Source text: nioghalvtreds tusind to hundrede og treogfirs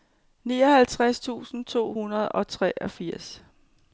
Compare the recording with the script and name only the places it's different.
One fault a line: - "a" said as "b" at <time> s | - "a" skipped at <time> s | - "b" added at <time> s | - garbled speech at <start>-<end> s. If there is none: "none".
none